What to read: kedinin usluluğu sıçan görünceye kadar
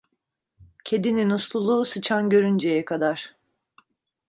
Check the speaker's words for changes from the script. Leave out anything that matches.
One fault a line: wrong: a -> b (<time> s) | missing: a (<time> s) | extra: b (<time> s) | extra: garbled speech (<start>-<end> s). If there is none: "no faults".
no faults